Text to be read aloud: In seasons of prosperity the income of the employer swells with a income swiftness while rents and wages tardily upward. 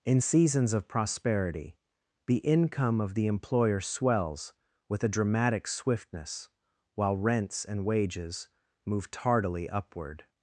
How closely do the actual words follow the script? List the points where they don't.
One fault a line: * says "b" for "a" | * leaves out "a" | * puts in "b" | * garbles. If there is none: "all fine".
* says "dramatic" for "income"
* puts in "move"